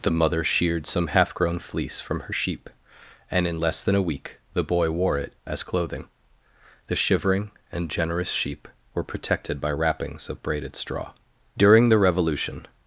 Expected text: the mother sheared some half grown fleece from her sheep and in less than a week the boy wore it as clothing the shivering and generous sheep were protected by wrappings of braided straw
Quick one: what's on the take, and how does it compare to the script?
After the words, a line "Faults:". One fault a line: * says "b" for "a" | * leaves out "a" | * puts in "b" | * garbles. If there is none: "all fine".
the mother sheared some half grown fleece from her sheep and in less than a week the boy wore it as clothing the shivering and generous sheep were protected by wrappings of braided straw during the revolution
Faults:
* puts in "during the revolution"